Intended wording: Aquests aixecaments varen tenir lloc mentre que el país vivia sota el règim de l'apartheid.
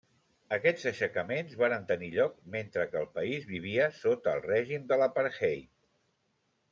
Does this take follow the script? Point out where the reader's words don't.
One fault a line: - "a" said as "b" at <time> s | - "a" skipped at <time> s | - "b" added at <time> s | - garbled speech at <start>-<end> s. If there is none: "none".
none